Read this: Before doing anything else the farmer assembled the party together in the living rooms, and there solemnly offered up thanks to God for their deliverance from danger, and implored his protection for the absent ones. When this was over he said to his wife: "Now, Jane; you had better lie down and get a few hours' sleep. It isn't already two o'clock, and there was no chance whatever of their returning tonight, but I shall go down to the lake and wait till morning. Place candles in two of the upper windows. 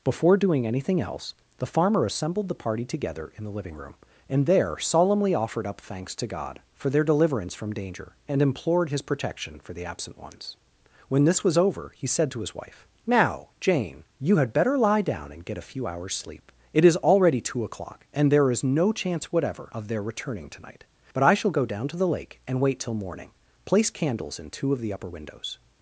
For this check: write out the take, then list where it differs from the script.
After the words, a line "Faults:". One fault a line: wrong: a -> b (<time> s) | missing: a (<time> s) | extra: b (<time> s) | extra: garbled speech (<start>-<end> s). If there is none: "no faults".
Before doing anything else the farmer assembled the party together in the living room, and there solemnly offered up thanks to God for their deliverance from danger, and implored his protection for the absent ones. When this was over he said to his wife: "Now, Jane; you had better lie down and get a few hours' sleep. It is already two o'clock, and there is no chance whatever of their returning tonight, but I shall go down to the lake and wait till morning. Place candles in two of the upper windows.
Faults:
wrong: rooms -> room (3.8 s)
wrong: isn't -> is (16.8 s)
wrong: was -> is (18.5 s)